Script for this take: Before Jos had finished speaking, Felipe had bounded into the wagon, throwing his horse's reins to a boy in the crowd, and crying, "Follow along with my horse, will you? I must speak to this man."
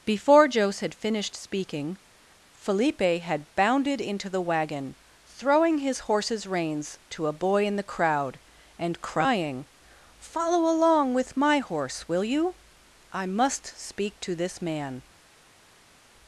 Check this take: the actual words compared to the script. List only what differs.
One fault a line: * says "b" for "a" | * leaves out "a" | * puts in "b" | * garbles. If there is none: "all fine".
all fine